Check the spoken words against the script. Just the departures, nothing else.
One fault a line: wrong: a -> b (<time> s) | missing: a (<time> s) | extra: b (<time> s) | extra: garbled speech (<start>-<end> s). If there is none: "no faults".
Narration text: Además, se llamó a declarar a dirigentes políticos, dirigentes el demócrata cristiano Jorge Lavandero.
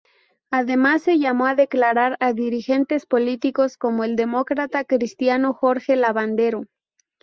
wrong: dirigentes -> como (3.8 s)